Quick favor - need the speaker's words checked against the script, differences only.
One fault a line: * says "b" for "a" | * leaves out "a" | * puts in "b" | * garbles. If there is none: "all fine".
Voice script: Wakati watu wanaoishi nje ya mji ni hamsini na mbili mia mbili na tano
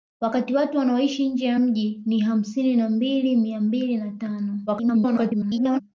* garbles